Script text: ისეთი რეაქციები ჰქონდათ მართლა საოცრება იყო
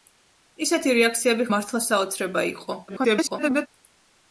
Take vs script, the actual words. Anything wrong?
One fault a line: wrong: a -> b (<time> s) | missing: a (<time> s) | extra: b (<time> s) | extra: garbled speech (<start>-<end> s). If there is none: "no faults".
missing: ჰქონდათ (1.4 s)
extra: garbled speech (2.9-3.7 s)